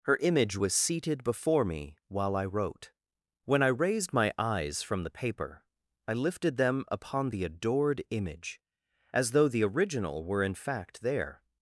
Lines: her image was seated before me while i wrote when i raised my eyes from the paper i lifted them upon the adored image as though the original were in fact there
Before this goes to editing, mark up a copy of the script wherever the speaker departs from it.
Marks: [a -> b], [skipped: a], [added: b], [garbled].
her image was seated before me while i wrote when i raised my eyes from the paper i lifted them upon the adored image as though the original were in fact there